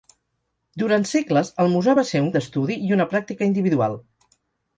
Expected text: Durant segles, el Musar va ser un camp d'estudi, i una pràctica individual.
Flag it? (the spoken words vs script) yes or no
yes